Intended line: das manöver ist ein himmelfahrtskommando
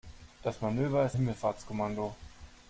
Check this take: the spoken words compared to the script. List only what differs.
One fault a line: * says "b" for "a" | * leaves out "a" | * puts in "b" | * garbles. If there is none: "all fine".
* leaves out "ein"